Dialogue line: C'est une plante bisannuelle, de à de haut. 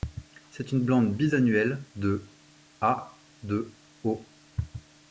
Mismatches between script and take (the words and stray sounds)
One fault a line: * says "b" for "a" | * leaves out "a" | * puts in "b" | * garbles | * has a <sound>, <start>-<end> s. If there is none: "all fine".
all fine